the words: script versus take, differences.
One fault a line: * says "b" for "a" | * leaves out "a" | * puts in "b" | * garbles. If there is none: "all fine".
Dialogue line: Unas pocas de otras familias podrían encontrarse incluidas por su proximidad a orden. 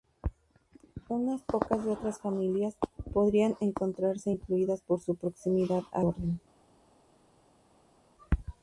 all fine